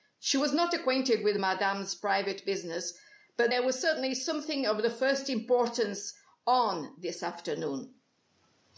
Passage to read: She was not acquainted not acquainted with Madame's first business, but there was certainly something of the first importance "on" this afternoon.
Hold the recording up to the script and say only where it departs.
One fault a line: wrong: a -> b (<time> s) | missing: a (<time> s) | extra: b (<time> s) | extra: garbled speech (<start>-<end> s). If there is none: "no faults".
missing: not acquainted (1.2 s)
wrong: first -> private (1.9 s)